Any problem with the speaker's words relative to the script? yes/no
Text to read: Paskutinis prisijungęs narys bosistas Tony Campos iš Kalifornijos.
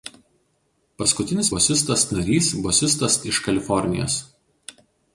yes